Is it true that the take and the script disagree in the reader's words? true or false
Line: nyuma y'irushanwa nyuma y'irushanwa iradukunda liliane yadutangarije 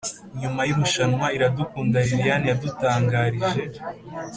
true